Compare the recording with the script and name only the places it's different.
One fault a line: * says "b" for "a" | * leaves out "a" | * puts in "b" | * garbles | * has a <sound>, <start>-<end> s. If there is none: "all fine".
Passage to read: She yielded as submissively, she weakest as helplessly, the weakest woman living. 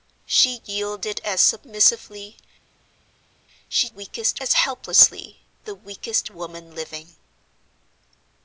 all fine